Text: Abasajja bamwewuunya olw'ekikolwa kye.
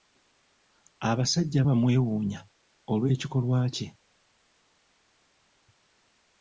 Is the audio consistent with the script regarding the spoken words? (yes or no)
yes